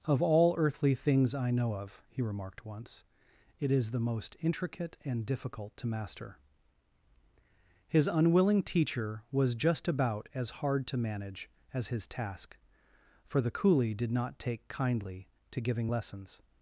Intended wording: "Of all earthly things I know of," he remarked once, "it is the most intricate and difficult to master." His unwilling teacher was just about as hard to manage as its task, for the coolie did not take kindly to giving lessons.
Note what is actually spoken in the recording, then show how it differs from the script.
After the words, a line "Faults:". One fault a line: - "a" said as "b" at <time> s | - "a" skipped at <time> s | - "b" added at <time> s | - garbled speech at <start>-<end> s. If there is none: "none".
"Of all earthly things I know of," he remarked once, "it is the most intricate and difficult to master." His unwilling teacher was just about as hard to manage as his task, for the coolie did not take kindly to giving lessons.
Faults:
- "its" said as "his" at 11.9 s